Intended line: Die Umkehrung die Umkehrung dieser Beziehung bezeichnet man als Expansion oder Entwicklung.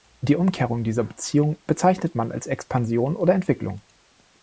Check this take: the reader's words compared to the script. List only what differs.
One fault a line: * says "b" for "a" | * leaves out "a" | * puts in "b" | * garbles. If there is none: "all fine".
* leaves out "die Umkehrung"